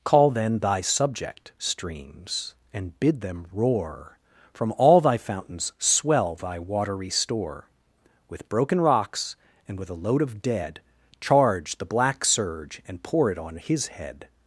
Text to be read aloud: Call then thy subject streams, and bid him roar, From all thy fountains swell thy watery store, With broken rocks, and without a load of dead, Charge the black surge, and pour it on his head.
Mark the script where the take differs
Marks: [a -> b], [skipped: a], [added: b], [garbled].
Call then thy subject streams, and bid [him -> them] roar, From all thy fountains swell thy watery store, With broken rocks, and [without -> with] a load of dead, Charge the black surge, and pour it on his head.